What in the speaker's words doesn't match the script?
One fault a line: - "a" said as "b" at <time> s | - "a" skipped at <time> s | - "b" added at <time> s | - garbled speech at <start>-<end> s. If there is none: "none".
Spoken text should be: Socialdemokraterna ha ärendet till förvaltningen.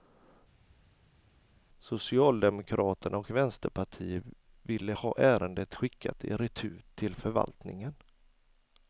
- "och vänsterpartiet ville" added at 3.2 s
- "skickat i retur" added at 5.7 s